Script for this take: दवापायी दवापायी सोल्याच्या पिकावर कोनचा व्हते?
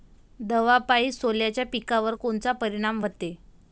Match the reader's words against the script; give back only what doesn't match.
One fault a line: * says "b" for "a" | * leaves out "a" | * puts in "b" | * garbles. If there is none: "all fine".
* leaves out "दवापायी"
* puts in "परिनाम"